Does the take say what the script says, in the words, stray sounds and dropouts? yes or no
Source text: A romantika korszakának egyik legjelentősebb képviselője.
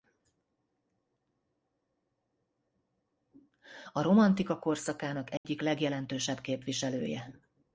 no